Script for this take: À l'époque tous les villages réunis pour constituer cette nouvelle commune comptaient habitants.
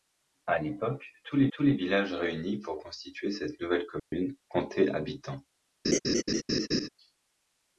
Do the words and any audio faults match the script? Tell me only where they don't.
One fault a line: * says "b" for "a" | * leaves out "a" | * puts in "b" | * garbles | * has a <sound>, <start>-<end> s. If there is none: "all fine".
* puts in "tous les"
* has a dropout, 4.0-4.1 s
* has a laugh, 5.8-6.9 s